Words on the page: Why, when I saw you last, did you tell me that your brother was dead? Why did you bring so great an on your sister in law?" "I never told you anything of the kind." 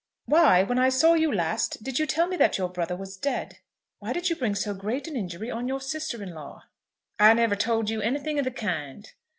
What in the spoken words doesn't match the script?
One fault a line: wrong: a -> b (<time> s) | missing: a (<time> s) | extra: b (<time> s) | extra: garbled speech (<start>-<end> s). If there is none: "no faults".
extra: injury (5.2 s)